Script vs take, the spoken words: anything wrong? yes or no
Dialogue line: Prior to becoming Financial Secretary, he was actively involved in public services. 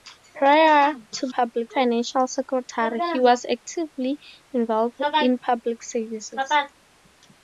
yes